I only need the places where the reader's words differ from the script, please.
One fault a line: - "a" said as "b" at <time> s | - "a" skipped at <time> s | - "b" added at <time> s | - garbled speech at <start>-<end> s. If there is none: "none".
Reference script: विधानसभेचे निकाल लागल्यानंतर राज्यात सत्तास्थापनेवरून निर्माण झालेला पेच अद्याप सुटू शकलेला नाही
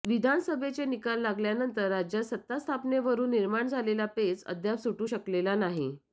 none